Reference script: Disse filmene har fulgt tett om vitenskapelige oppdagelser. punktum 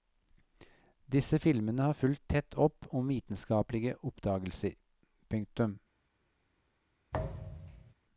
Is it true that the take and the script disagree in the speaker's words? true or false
true